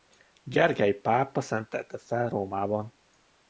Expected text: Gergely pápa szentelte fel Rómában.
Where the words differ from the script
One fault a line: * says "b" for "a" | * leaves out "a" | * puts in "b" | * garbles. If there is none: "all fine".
all fine